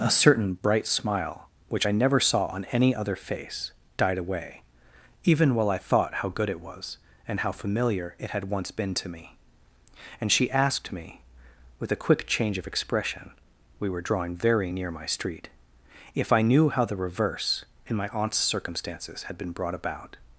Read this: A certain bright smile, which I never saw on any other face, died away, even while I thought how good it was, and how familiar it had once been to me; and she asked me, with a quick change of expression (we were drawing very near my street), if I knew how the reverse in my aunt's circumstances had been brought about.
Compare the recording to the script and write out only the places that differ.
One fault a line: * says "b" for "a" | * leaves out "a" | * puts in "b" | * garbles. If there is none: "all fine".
all fine